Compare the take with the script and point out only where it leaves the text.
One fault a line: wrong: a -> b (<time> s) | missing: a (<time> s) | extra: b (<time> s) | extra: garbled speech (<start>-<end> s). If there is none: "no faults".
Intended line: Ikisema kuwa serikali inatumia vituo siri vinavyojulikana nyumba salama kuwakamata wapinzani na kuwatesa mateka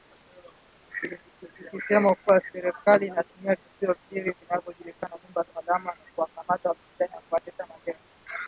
no faults